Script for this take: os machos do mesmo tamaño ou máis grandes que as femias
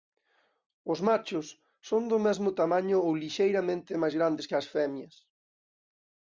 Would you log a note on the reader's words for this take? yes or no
yes